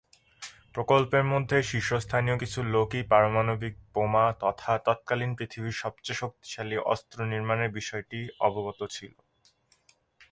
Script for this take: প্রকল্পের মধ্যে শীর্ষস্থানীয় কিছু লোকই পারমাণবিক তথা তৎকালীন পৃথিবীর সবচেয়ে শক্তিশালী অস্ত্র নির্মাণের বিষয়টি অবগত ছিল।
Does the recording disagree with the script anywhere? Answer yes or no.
yes